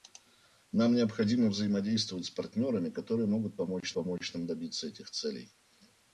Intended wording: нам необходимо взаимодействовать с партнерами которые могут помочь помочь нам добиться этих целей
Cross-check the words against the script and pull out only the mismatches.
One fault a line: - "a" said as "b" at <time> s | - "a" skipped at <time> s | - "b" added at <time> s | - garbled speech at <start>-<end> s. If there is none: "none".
none